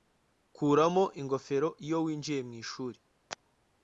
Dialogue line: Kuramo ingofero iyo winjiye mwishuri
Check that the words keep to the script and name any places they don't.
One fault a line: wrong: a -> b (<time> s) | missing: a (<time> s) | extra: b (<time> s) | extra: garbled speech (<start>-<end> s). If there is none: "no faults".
no faults